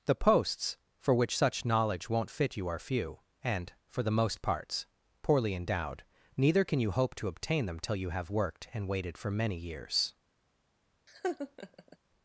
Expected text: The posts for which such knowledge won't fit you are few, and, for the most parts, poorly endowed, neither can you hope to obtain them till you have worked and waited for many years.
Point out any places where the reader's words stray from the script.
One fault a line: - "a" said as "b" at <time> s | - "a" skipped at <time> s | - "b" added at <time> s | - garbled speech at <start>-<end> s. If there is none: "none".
none